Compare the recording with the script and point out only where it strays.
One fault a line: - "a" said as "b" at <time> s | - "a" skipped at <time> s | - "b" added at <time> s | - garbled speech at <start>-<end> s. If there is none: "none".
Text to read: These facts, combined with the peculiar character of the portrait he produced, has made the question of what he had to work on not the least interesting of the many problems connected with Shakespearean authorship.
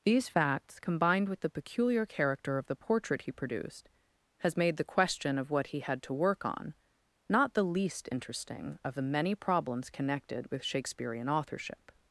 none